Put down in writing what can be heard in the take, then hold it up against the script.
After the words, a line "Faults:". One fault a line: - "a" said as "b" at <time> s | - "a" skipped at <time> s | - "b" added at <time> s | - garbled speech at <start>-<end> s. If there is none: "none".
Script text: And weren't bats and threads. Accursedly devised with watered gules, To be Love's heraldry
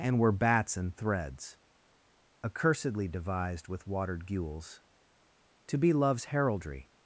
And were bats and threads. Accursedly devised with watered gules, To be Love's heraldry
Faults:
- "weren't" said as "were" at 0.2 s